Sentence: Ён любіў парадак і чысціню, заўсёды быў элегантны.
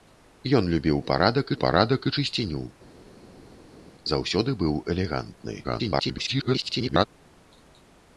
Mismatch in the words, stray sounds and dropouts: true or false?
true